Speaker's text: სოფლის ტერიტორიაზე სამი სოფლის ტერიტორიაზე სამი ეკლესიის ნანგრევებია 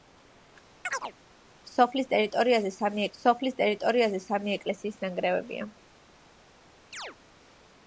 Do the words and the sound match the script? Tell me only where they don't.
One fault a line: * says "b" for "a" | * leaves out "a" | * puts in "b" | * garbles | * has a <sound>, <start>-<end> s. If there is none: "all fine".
* has a chirp, 0.8-1.1 s
* has a chirp, 6.9-7.2 s